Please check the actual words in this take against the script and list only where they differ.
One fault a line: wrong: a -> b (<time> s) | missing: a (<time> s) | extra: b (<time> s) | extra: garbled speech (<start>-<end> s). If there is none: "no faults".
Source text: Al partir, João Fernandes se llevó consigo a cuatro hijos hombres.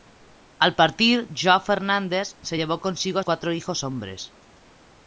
no faults